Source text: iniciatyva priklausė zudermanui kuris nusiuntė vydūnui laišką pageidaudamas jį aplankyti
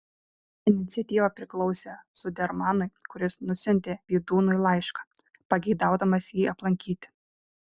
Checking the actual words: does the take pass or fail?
pass